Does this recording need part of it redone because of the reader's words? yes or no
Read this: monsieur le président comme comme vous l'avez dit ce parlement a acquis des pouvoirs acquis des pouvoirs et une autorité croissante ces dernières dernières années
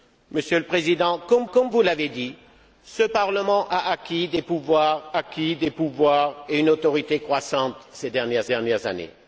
no